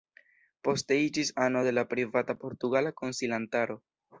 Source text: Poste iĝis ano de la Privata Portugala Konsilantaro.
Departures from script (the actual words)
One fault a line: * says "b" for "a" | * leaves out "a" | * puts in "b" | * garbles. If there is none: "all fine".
all fine